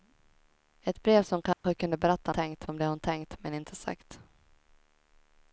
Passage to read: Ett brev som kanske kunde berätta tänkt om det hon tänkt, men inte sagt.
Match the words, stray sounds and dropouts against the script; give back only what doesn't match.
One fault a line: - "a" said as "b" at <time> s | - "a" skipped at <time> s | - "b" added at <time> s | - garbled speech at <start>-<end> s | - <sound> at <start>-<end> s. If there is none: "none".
- dropout at 1.5-1.6 s